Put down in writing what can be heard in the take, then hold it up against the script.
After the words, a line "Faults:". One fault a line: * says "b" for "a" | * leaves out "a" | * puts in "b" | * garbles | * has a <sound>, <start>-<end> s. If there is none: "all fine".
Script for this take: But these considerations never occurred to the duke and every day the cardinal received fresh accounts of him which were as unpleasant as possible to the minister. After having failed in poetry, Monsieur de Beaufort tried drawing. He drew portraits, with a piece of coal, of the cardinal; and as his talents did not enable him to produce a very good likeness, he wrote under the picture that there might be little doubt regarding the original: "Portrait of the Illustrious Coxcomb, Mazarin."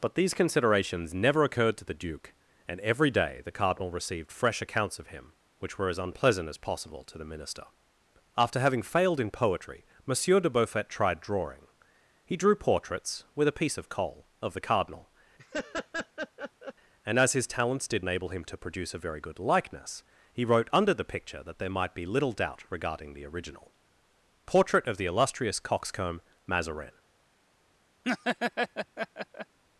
But these considerations never occurred to the duke and every day the cardinal received fresh accounts of him which were as unpleasant as possible to the minister. After having failed in poetry, Monsieur de Beaufort tried drawing. He drew portraits, with a piece of coal, of the cardinal; and as his talents did enable him to produce a very good likeness, he wrote under the picture that there might be little doubt regarding the original: "Portrait of the Illustrious Coxcomb, Mazarin."
Faults:
* has a laugh, 15.4-16.7 s
* leaves out "not"
* has a laugh, 28.0-29.6 s